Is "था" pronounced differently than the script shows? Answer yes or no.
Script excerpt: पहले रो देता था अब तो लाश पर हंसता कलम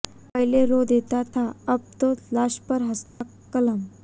no